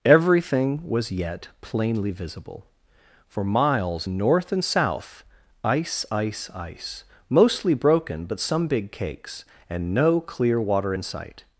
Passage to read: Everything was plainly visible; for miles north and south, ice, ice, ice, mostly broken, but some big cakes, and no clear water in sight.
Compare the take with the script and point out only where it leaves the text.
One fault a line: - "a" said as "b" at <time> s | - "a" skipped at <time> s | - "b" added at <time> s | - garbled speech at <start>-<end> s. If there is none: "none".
- "yet" added at 1.1 s